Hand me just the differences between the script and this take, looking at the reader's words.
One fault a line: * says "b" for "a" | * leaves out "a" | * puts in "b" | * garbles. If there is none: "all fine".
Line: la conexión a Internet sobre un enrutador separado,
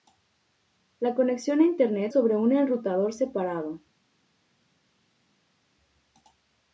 all fine